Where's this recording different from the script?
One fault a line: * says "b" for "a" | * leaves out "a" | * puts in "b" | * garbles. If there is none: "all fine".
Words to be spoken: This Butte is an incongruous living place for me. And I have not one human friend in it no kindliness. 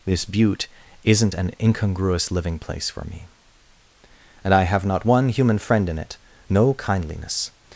* says "isn't" for "is"